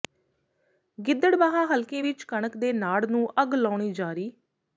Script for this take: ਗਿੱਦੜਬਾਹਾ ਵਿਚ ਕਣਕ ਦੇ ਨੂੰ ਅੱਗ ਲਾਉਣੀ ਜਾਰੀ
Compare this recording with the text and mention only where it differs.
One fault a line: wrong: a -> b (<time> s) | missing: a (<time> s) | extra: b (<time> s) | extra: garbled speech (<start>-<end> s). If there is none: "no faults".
extra: ਹਲਕੇ (1.6 s)
extra: ਨਾੜ (2.7 s)